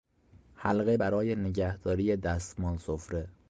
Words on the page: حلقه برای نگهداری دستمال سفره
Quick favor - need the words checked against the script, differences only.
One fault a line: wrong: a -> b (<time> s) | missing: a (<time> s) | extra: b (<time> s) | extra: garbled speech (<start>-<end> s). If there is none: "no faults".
no faults